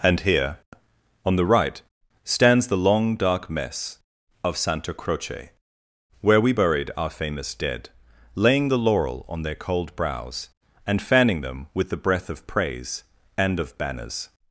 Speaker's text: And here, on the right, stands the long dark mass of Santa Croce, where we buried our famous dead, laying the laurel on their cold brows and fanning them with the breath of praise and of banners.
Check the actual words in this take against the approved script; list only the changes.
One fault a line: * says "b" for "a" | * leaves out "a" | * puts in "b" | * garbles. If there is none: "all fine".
* says "mess" for "mass"